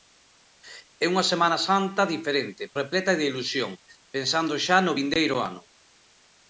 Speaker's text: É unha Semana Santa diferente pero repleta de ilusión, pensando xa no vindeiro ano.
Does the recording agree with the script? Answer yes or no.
no